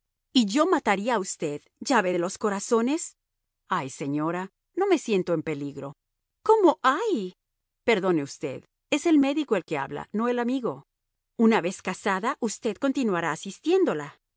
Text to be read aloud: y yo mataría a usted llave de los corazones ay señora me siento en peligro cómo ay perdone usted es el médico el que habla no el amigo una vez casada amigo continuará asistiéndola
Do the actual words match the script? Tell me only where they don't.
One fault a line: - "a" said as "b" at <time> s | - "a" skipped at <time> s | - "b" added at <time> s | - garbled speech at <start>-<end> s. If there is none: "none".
- "no" added at 4.7 s
- "amigo" said as "usted" at 12.4 s